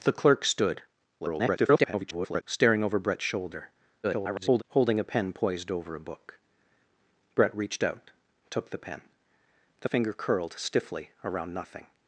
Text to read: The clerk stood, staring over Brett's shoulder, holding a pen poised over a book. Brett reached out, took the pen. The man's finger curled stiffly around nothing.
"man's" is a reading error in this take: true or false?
true